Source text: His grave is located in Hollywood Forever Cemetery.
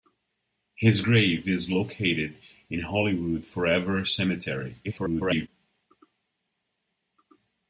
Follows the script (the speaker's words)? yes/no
no